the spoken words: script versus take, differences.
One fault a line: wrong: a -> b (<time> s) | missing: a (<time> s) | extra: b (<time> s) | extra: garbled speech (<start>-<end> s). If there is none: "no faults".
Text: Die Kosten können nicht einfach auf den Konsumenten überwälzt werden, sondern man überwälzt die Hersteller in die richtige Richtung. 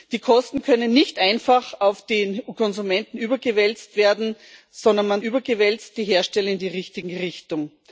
no faults